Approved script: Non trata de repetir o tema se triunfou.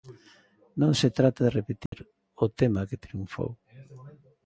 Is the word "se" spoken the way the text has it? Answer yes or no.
no